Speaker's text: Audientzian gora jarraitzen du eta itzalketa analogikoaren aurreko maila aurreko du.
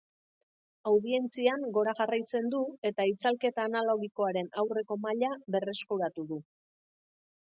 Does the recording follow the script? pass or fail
fail